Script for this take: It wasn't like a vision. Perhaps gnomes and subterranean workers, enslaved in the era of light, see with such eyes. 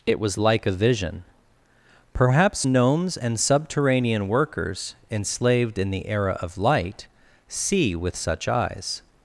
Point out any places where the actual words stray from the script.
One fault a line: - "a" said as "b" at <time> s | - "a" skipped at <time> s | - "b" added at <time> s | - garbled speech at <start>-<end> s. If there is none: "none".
- "wasn't" said as "was" at 0.2 s